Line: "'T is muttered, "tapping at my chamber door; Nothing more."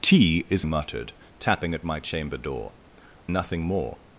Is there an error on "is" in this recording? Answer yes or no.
no